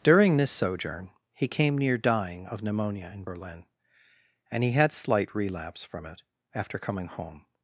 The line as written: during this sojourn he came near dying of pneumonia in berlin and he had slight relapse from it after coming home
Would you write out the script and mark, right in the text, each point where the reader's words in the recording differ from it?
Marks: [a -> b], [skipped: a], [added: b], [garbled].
during this sojourn he came near dying of pneumonia in berlin and he had slight relapse from it after coming home